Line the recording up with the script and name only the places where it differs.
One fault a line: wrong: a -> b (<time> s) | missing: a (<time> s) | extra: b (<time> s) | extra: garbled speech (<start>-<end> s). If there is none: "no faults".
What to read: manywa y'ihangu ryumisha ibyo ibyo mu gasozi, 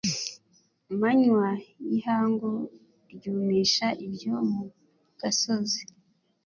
missing: ibyo (4.3 s)